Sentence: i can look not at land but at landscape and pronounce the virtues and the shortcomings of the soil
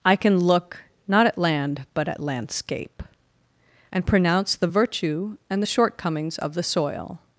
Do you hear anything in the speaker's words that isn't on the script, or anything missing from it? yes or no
yes